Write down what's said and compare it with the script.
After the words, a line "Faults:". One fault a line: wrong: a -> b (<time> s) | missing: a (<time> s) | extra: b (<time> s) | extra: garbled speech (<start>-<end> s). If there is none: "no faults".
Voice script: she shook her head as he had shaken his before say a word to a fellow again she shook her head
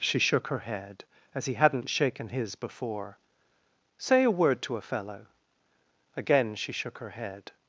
she shook her head as he hadn't shaken his before say a word to a fellow again she shook her head
Faults:
wrong: had -> hadn't (1.5 s)